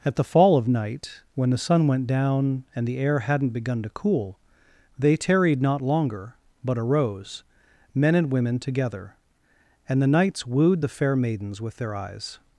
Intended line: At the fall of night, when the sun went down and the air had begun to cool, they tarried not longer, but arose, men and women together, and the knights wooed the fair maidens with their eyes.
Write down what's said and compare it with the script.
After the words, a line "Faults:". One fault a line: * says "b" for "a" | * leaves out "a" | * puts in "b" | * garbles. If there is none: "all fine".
At the fall of night, when the sun went down and the air hadn't begun to cool, they tarried not longer, but arose, men and women together, and the knights wooed the fair maidens with their eyes.
Faults:
* says "hadn't" for "had"